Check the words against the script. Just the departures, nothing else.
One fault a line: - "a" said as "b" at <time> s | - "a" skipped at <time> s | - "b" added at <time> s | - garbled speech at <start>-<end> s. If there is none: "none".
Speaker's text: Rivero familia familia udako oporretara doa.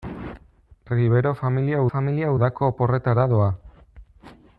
none